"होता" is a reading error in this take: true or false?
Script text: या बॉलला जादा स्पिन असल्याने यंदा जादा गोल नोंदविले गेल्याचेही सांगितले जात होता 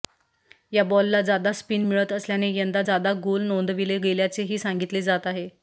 true